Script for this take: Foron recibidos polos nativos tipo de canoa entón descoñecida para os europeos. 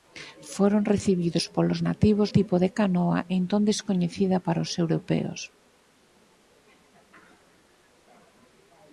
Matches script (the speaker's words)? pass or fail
pass